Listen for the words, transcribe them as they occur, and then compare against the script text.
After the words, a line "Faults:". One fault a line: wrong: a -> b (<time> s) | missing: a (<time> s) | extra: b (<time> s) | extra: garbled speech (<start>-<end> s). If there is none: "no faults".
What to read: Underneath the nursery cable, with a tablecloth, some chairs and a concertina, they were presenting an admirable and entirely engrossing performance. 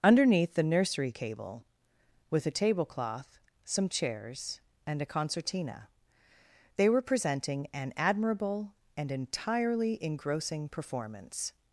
Underneath the nursery cable, with a tablecloth, some chairs and a concertina, they were presenting an admirable and entirely engrossing performance.
Faults:
no faults